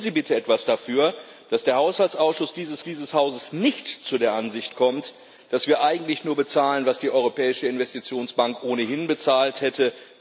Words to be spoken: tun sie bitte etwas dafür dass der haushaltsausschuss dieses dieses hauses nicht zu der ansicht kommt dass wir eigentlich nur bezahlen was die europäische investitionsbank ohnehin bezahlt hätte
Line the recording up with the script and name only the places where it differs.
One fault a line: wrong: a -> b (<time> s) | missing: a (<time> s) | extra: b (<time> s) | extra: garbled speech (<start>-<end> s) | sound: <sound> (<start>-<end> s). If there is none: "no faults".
no faults